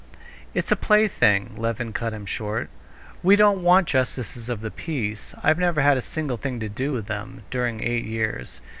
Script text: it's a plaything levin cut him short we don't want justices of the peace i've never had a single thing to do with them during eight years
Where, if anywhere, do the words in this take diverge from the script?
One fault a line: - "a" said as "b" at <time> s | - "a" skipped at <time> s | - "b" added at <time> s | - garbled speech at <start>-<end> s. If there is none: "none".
none